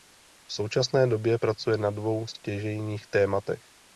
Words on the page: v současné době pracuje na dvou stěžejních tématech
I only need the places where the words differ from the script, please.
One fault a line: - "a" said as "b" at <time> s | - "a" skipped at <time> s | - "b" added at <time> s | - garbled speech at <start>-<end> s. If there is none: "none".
none